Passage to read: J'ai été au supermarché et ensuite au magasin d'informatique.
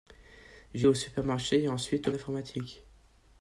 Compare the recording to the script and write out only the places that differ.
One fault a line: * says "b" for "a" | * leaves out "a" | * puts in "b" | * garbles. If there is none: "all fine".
* leaves out "été"
* leaves out "magasin"